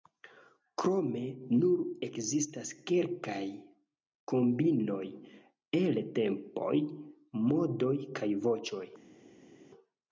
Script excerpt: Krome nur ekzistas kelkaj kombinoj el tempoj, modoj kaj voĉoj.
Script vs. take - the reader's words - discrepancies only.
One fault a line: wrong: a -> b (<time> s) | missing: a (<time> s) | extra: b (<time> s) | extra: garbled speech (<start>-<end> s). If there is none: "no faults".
no faults